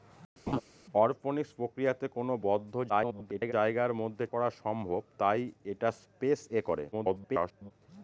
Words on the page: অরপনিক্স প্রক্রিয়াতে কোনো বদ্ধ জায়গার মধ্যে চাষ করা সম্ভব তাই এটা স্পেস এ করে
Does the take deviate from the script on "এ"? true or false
false